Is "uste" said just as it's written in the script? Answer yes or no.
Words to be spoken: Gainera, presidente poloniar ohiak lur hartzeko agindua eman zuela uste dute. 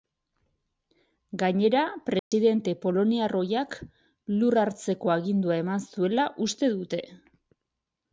yes